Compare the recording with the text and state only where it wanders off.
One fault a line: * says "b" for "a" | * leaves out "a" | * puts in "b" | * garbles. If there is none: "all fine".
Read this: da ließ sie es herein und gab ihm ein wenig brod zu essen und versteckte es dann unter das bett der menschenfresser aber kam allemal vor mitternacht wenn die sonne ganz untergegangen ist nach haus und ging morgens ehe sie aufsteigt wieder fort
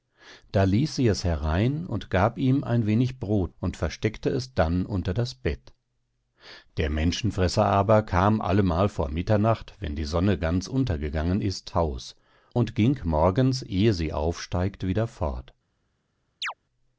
* leaves out "zu essen"
* leaves out "nach"